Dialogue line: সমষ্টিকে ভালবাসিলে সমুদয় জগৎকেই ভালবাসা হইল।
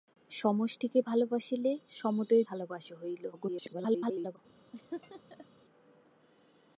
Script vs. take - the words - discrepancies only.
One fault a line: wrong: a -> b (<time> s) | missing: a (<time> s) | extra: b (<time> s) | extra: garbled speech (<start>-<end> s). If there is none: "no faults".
missing: জগৎকেই (2.4 s)
extra: garbled speech (3.3-4.4 s)